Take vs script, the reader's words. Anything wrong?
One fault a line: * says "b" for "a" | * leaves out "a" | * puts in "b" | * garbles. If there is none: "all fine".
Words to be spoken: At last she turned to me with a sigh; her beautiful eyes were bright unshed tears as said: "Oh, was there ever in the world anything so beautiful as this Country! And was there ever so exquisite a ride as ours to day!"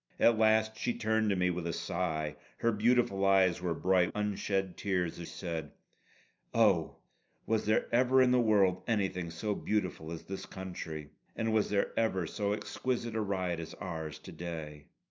all fine